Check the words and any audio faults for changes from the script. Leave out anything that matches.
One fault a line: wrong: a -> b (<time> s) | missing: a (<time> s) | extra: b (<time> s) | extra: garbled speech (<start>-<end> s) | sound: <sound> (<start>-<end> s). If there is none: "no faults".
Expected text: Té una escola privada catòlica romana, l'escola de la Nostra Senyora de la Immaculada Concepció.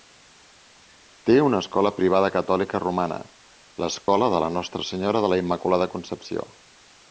sound: dropout (4.0-4.1 s)